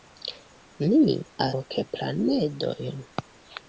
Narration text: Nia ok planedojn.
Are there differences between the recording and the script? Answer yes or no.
no